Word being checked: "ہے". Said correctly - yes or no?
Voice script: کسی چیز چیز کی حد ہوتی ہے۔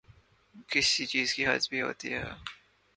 yes